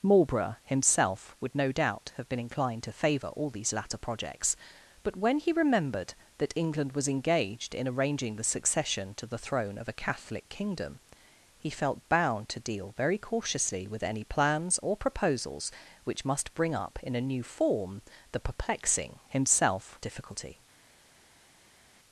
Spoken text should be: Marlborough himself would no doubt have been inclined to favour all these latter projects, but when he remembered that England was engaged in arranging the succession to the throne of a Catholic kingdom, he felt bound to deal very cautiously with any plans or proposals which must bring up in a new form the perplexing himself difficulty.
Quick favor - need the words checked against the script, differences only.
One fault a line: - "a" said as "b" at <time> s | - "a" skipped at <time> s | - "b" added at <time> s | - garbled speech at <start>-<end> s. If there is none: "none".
none